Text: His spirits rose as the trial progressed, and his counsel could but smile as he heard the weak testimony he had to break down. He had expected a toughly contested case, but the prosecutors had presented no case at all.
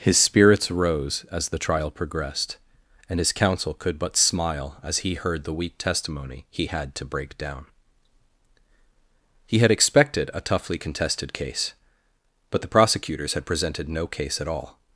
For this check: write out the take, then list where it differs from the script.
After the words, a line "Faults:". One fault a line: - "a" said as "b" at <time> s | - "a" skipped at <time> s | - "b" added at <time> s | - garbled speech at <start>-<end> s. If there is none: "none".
His spirits rose as the trial progressed, and his counsel could but smile as he heard the weak testimony he had to break down. He had expected a toughly contested case, but the prosecutors had presented no case at all.
Faults:
none